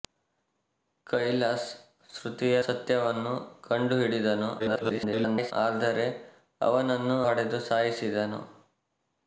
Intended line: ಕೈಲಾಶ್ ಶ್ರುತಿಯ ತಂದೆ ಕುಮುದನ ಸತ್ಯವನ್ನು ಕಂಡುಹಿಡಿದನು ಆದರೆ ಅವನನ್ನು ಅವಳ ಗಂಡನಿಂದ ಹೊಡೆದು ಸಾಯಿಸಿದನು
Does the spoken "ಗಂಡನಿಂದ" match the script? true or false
false